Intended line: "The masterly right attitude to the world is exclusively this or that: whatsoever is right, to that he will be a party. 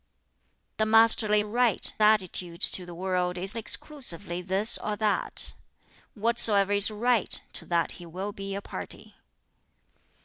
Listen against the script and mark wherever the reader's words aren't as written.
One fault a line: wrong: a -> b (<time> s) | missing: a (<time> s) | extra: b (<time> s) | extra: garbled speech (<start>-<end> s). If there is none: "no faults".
no faults